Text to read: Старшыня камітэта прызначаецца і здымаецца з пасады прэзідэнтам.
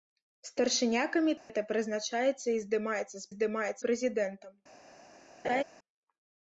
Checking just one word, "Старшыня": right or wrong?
right